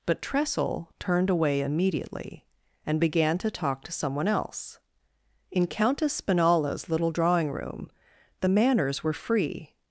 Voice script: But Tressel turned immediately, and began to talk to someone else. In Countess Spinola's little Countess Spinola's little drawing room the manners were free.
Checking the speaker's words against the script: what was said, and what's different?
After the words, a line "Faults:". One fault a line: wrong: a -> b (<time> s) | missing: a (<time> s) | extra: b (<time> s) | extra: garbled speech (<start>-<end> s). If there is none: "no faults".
But Tressel turned away immediately, and began to talk to someone else. In Countess Spinola's little drawing room the manners were free.
Faults:
extra: away (1.3 s)
missing: Countess Spinola's little (7.1 s)